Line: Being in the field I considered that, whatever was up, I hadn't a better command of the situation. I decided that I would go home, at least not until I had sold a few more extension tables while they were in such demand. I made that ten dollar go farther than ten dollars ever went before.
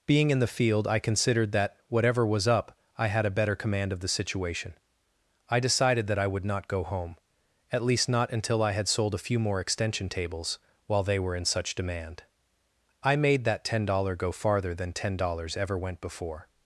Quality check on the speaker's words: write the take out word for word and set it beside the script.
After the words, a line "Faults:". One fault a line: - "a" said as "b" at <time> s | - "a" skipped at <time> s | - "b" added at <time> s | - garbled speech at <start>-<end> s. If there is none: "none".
Being in the field I considered that, whatever was up, I had a better command of the situation. I decided that I would not go home, at least not until I had sold a few more extension tables while they were in such demand. I made that ten dollar go farther than ten dollars ever went before.
Faults:
- "hadn't" said as "had" at 3.1 s
- "not" added at 6.5 s